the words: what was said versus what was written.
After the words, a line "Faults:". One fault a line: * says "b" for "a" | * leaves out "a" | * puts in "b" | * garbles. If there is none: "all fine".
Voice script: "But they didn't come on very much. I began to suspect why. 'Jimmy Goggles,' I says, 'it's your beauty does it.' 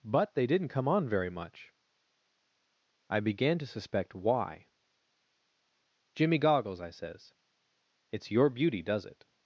"But they didn't come on very much. I began to suspect why. 'Jimmy Goggles,' I says, 'it's your beauty does it.'
Faults:
all fine